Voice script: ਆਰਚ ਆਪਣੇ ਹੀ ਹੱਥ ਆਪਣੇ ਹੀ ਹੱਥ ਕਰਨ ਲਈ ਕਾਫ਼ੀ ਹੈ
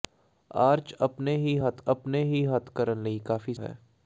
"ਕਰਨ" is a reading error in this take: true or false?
false